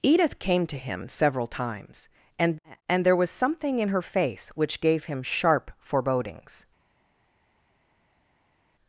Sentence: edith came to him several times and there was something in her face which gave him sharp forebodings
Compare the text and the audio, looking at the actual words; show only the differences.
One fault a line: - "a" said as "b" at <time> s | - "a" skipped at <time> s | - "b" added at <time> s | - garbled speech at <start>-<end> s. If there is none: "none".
- "and" added at 2.9 s